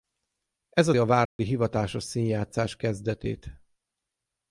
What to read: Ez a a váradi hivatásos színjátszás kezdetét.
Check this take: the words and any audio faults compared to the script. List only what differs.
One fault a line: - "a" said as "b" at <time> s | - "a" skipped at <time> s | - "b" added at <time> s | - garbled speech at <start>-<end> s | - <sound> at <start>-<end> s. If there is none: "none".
- dropout at 1.3-1.4 s